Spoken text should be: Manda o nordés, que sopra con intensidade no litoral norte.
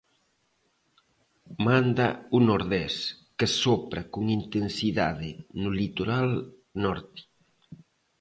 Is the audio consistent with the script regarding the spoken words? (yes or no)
yes